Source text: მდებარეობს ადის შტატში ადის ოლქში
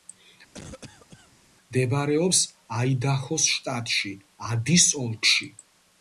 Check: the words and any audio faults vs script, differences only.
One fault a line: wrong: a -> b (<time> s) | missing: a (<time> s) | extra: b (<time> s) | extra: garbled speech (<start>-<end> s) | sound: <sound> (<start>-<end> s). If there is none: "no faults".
sound: cough (0.5-1.4 s)
wrong: ადის -> აიდაჰოს (2.8 s)